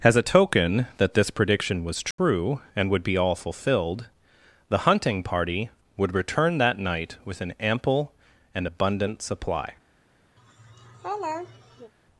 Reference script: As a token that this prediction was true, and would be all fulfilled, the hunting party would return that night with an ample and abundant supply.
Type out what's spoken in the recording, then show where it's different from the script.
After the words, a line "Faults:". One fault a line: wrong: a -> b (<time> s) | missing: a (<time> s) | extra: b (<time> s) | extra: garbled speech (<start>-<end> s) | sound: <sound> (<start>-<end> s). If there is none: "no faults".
As a token that this prediction was true, and would be all fulfilled, the hunting party would return that night with an ample and abundant supply.
Faults:
sound: dropout (2.1-2.2 s)
sound: laugh (10.4-11.9 s)